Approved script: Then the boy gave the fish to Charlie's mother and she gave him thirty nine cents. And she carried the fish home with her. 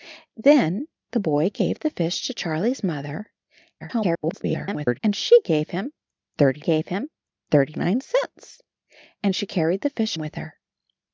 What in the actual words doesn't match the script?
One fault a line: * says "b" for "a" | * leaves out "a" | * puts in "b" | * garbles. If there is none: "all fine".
* garbles
* puts in "gave him thirty"
* leaves out "home"